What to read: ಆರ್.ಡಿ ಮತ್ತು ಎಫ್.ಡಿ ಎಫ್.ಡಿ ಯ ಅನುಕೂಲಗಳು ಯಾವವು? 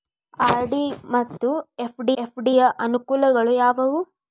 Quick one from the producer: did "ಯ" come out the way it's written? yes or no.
yes